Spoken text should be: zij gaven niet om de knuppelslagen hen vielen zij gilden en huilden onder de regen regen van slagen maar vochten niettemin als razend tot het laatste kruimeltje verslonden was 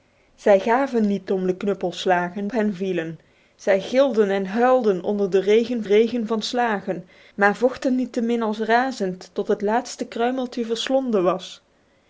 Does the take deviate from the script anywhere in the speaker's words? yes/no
no